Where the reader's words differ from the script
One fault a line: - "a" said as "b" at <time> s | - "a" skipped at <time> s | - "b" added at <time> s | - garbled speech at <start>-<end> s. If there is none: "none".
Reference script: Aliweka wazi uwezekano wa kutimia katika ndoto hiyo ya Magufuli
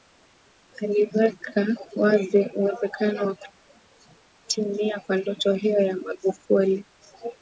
- "katika" said as "kwa" at 5.0 s